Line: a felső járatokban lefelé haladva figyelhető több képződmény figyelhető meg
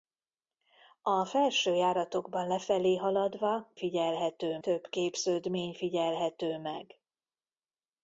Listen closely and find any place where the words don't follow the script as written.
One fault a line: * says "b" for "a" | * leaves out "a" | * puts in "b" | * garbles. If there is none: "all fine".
all fine